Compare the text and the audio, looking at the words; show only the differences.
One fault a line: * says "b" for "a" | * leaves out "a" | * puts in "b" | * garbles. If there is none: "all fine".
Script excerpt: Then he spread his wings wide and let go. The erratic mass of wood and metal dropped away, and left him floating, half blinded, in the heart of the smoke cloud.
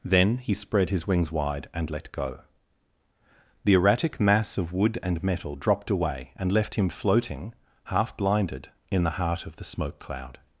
all fine